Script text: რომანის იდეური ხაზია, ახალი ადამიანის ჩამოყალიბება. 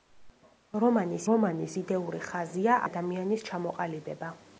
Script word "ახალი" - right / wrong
wrong